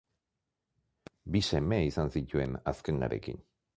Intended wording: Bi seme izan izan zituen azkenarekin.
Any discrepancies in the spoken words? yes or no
yes